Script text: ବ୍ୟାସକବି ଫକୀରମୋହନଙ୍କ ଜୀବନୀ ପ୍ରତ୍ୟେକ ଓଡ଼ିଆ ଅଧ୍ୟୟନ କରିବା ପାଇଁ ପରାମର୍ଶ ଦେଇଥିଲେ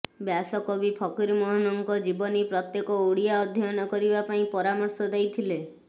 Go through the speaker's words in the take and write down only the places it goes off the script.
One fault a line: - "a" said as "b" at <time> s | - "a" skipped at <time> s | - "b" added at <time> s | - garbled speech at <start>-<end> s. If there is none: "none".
none